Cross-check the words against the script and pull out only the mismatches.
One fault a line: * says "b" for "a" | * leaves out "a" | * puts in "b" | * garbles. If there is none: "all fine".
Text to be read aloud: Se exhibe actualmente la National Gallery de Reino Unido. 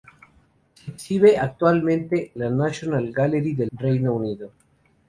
all fine